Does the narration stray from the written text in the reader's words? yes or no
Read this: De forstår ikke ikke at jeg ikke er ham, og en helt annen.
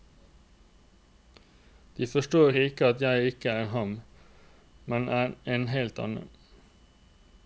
yes